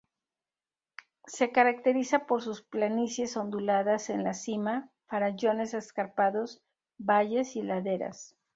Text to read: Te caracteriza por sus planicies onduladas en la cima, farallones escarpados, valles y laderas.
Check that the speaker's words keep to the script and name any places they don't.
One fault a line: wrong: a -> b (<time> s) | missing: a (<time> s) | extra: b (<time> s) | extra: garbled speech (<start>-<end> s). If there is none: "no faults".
wrong: Te -> Se (1.3 s)